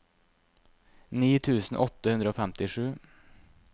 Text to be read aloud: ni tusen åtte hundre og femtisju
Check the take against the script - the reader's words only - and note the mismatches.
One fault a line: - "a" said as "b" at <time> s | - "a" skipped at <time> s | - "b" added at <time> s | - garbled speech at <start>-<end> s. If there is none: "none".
none